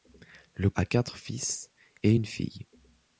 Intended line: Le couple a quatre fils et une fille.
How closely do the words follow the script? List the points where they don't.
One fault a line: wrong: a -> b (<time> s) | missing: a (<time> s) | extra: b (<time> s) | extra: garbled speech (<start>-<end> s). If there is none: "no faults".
missing: couple (0.7 s)